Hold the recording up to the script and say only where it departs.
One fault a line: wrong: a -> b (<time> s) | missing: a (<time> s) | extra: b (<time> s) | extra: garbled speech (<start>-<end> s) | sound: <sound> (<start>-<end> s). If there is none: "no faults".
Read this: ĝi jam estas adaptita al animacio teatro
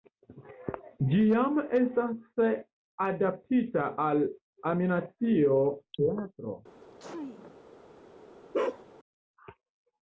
sound: sneeze (6.8-7.6 s)
sound: bark (8.5-8.8 s)